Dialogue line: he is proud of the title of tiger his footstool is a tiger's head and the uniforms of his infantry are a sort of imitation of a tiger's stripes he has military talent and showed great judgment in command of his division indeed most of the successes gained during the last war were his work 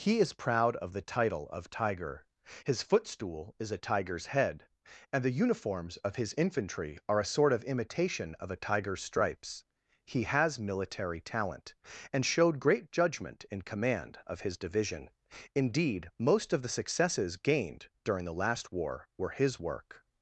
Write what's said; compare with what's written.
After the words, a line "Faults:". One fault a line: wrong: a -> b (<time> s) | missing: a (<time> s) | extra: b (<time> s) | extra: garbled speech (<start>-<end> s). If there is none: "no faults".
he is proud of the title of tiger his footstool is a tiger's head and the uniforms of his infantry are a sort of imitation of a tiger's stripes he has military talent and showed great judgment in command of his division indeed most of the successes gained during the last war were his work
Faults:
no faults